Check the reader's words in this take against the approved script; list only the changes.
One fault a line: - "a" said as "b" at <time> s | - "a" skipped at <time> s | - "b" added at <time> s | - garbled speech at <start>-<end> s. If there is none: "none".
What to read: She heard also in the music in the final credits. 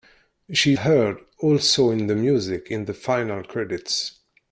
none